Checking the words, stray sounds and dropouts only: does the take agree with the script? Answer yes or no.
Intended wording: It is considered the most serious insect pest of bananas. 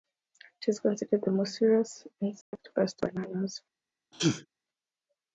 no